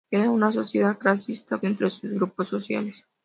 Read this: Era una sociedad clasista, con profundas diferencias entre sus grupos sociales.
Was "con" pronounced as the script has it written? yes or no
no